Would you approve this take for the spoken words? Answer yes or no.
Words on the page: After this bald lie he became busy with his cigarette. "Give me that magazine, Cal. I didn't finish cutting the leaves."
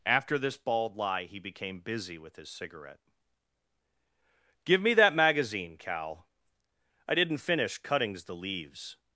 no